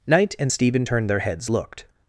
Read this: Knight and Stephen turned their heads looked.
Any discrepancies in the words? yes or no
no